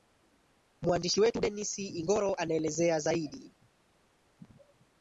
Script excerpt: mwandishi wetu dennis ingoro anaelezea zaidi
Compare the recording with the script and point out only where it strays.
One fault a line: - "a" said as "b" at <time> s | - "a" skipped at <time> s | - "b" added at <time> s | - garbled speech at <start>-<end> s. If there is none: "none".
none